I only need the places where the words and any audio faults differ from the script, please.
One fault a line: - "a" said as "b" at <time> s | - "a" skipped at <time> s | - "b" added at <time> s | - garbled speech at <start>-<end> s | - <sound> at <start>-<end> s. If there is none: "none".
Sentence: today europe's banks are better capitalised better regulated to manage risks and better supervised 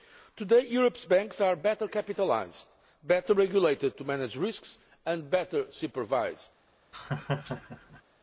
- laugh at 6.9-8.0 s